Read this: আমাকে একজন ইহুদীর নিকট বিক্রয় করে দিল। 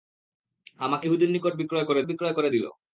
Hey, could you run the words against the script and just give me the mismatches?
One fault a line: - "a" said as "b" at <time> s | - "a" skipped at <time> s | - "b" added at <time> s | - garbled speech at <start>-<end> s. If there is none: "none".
- "একজন" skipped at 1.1 s
- "বিক্রয় করে" added at 2.1 s